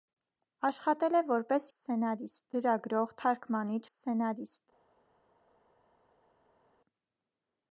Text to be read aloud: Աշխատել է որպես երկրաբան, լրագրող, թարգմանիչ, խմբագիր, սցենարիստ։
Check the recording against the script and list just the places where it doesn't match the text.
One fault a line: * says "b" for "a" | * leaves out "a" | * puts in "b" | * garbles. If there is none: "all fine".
* says "սցենարիստ" for "երկրաբան"
* leaves out "խմբագիր"